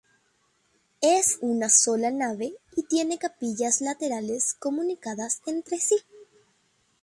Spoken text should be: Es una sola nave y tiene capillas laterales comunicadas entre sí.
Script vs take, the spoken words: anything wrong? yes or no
no